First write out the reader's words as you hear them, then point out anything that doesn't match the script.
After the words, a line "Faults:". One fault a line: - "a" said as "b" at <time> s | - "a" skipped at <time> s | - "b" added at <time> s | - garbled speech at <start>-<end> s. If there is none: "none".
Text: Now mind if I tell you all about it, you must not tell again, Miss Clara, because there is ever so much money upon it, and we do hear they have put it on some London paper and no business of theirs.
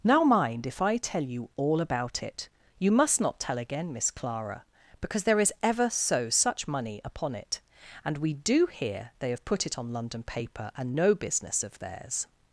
Now mind if I tell you all about it, you must not tell again, Miss Clara, because there is ever so such money upon it, and we do hear they have put it on London paper and no business of theirs.
Faults:
- "much" said as "such" at 6.3 s
- "some" skipped at 9.9 s